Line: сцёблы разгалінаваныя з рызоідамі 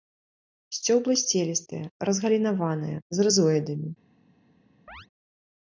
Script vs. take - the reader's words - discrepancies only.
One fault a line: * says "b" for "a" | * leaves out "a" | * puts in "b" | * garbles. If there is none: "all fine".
* puts in "сцелістыя"